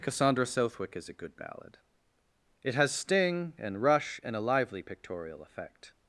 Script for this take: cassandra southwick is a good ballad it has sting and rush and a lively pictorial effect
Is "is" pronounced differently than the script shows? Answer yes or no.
no